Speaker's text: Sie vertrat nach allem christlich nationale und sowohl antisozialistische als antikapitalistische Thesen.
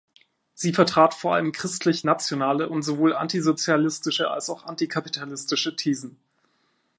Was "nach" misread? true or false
true